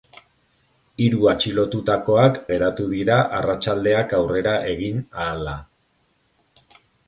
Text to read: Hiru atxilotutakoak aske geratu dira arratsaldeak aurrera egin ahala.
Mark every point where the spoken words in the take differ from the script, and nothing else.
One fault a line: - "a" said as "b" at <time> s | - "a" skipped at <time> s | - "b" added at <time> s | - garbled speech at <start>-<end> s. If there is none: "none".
- "aske" skipped at 2.4 s